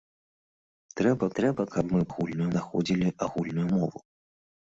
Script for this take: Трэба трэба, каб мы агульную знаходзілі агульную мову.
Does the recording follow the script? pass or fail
pass